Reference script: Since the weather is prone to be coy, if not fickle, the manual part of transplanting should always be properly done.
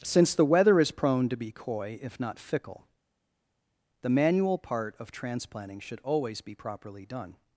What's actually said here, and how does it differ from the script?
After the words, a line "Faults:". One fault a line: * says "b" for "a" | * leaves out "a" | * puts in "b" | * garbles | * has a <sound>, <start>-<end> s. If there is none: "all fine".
Since the weather is prone to be coy, if not fickle, the manual part of transplanting should always be properly done.
Faults:
all fine